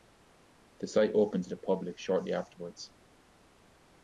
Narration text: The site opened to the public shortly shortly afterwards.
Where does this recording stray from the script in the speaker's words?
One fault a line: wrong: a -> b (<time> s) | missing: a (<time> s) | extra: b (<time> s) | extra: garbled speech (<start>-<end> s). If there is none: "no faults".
missing: shortly (2.3 s)